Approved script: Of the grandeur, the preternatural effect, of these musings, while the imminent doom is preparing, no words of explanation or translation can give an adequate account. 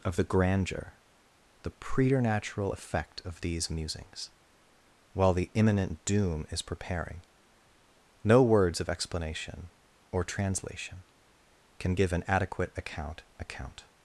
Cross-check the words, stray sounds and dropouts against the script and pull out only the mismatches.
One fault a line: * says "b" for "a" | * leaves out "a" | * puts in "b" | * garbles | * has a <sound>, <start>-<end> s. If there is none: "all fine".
* puts in "account"